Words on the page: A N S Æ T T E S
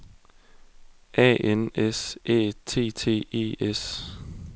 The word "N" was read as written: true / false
true